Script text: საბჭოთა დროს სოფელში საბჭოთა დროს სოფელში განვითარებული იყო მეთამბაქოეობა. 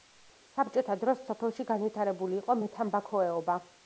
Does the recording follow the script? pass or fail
fail